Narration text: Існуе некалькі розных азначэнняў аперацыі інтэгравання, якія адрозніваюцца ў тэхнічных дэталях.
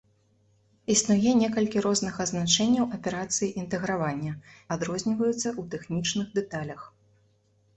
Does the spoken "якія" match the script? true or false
false